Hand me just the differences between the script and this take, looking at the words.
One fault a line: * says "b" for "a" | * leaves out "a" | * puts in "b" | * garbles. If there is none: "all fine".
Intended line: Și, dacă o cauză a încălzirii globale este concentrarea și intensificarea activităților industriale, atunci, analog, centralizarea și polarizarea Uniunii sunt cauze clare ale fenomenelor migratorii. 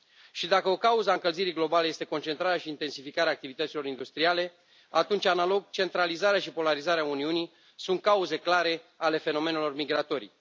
all fine